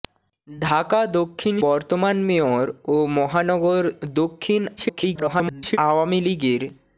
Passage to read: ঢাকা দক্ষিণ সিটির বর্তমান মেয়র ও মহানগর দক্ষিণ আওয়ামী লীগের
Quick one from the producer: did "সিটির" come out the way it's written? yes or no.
no